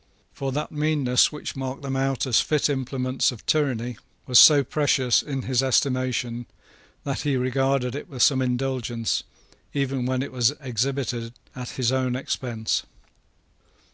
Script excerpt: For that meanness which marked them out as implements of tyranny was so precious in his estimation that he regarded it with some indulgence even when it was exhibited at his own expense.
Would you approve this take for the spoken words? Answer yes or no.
no